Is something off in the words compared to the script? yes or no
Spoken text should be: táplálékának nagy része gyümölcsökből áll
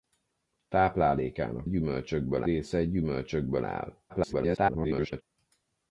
yes